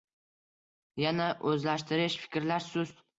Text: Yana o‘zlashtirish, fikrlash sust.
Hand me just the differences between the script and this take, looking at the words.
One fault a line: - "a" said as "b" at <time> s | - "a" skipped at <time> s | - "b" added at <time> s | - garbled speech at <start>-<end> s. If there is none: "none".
none